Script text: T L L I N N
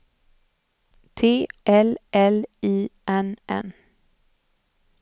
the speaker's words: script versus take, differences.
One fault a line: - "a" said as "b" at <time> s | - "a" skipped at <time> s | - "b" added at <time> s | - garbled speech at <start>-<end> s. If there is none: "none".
none